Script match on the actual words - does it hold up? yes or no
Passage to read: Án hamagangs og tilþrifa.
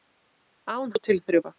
no